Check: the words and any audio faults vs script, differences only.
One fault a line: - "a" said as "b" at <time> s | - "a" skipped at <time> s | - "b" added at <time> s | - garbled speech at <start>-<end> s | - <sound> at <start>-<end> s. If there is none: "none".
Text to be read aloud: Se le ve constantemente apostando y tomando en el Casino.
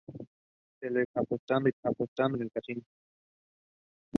- "ve constantemente" skipped at 1.0 s
- "tomando" said as "apostando" at 1.8 s